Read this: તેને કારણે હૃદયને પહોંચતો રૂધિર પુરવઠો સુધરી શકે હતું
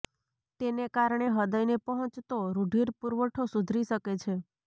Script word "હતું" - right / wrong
wrong